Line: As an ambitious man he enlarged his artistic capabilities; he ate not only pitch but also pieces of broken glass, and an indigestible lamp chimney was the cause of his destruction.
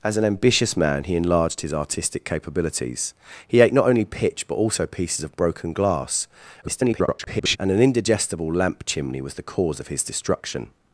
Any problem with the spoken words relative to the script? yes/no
yes